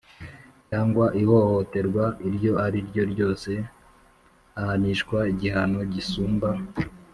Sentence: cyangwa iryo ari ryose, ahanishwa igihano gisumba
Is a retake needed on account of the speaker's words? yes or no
yes